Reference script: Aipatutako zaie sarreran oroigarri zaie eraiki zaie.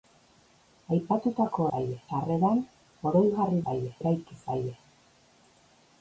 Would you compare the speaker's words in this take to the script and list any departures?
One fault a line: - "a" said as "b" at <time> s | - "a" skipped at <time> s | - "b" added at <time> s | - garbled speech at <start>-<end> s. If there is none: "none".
none